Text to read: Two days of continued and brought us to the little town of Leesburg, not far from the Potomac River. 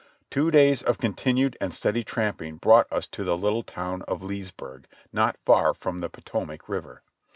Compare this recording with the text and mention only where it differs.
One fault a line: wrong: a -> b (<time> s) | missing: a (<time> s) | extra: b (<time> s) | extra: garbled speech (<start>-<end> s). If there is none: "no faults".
extra: steady tramping (1.8 s)